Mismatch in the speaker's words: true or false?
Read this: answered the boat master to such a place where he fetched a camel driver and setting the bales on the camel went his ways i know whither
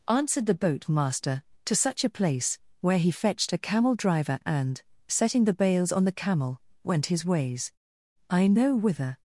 false